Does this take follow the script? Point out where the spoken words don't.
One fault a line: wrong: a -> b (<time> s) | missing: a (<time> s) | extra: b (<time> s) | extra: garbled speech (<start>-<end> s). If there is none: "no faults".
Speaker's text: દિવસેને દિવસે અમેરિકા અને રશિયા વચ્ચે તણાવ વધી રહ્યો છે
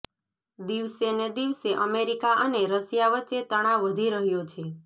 no faults